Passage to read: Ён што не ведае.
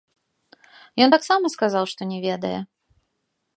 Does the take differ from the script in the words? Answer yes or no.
yes